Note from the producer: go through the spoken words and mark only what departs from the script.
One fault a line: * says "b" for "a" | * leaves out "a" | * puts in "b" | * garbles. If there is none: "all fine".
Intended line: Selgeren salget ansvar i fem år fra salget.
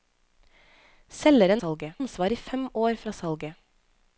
all fine